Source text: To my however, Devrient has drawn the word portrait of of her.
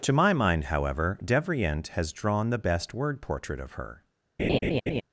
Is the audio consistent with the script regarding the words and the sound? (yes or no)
no